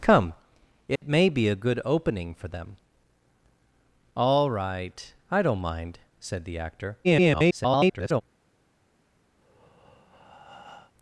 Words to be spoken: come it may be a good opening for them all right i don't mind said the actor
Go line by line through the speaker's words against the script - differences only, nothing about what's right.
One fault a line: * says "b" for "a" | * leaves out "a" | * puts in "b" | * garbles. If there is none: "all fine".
* garbles